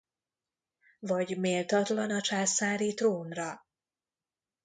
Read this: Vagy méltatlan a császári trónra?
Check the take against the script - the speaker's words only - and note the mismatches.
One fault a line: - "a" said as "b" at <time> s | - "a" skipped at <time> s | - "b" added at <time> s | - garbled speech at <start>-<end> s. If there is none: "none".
none